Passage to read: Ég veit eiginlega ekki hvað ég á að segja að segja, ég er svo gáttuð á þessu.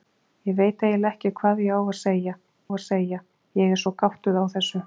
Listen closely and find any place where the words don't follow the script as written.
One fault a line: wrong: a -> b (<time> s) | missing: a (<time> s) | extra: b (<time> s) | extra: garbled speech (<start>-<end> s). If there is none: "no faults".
no faults